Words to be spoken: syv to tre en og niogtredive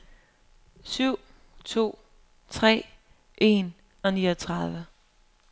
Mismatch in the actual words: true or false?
false